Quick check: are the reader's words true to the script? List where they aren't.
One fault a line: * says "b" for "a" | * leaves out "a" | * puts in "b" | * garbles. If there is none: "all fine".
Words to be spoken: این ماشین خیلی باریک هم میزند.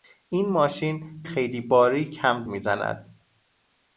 all fine